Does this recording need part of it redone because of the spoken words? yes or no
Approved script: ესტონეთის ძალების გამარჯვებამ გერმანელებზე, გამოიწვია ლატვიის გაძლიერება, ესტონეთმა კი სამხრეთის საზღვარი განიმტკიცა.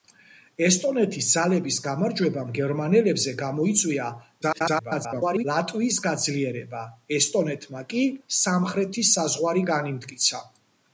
yes